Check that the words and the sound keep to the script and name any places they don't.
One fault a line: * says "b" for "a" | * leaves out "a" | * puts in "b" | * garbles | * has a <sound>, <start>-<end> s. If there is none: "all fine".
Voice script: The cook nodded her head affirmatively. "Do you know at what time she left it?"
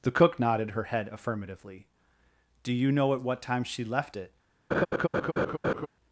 * has a laugh, 4.7-5.9 s